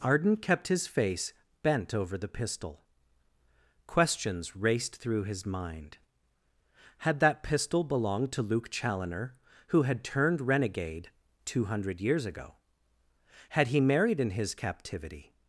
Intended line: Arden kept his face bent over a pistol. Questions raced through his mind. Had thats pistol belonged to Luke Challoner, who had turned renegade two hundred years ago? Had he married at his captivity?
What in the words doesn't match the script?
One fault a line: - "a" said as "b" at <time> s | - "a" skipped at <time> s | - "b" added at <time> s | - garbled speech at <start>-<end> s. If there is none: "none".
- "a" said as "the" at 2.2 s
- "thats" said as "that" at 7.2 s
- "at" said as "in" at 14.2 s